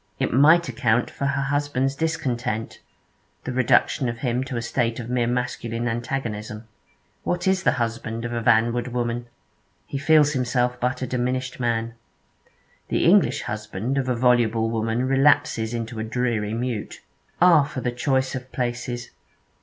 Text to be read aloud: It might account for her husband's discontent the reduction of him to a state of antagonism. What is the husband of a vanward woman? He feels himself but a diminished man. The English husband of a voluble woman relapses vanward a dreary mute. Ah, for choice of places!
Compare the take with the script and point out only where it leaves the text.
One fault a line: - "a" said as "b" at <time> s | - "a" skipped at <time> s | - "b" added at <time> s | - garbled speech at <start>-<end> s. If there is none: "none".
- "mere masculine" added at 5.1 s
- "vanward" said as "into" at 15.7 s
- "the" added at 17.8 s